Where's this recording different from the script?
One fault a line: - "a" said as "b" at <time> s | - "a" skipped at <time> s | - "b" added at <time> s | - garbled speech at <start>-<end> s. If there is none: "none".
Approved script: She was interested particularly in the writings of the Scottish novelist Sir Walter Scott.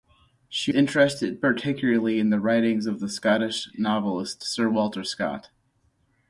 - "was" skipped at 0.7 s